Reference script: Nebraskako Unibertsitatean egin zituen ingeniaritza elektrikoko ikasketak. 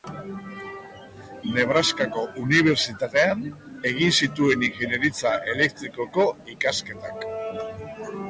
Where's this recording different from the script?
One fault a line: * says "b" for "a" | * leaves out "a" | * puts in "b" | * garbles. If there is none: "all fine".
all fine